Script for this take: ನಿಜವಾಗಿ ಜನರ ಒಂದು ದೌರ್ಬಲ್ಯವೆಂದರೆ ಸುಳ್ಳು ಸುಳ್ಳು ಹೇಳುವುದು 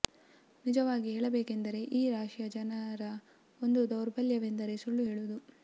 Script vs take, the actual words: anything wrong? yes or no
yes